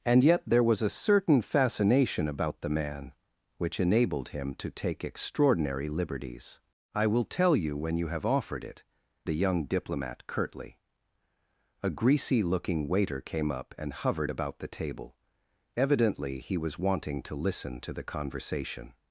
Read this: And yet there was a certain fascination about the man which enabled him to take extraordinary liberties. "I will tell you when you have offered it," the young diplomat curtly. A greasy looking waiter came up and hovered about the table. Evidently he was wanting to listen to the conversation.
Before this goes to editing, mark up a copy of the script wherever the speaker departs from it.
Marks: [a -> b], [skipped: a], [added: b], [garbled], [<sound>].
And yet there was a certain fascination about the man which enabled him to take extraordinary liberties. "I will tell you when you have offered it," the young diplomat curtly. A greasy looking waiter came up and hovered about the table. Evidently he was wanting to listen to the conversation.